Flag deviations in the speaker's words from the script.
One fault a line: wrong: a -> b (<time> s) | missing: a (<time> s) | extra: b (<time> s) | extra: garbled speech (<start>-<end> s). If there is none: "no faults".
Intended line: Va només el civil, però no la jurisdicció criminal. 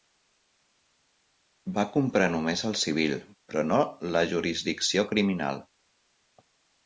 extra: comprar (2.0 s)